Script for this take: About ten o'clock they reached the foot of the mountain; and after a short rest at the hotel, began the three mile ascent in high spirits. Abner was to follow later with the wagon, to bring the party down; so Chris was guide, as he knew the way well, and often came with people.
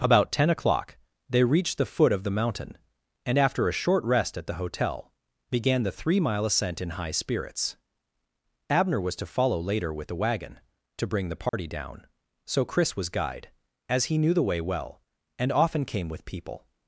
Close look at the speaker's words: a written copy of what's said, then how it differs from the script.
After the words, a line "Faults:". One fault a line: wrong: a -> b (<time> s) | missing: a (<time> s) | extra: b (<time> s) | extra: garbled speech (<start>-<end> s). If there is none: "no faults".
About ten o'clock they reached the foot of the mountain; and after a short rest at the hotel, began the three mile ascent in high spirits. Abner was to follow later with the wagon, to bring the party down; so Chris was guide, as he knew the way well, and often came with people.
Faults:
no faults